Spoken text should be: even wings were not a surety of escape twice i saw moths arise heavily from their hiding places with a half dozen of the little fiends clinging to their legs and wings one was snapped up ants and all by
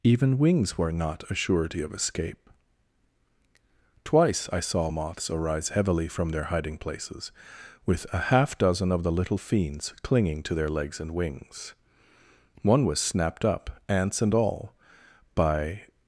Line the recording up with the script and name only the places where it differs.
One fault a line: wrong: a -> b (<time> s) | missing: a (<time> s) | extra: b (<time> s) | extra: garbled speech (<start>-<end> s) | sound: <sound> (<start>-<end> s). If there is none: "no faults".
no faults